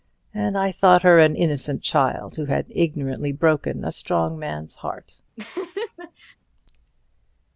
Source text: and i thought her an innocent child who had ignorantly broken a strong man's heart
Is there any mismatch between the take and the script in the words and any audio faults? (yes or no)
yes